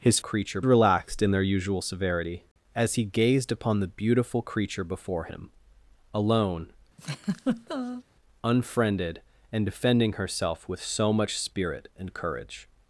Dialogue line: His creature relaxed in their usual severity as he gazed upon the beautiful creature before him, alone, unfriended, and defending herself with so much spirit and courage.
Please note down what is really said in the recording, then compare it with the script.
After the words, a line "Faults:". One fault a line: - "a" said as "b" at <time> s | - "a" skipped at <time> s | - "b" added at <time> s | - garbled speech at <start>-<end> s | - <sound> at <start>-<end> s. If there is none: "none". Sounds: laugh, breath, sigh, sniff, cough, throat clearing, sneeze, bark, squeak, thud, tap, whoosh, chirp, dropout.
His creature relaxed in their usual severity as he gazed upon the beautiful creature before him, alone, unfriended, and defending herself with so much spirit and courage.
Faults:
- laugh at 7.0-8.0 s